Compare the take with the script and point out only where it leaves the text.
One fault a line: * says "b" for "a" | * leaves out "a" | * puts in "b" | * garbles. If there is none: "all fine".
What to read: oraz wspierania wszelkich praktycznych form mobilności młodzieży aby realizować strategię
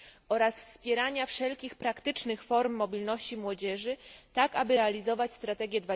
* puts in "tak"